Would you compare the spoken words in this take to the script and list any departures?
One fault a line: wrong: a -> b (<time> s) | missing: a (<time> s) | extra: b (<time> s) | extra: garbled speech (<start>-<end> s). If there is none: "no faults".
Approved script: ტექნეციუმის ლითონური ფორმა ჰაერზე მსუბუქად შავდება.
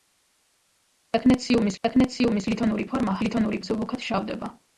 extra: ტექნეციუმის (1.9 s)
wrong: ჰაერზე -> ლითონური (3.3 s)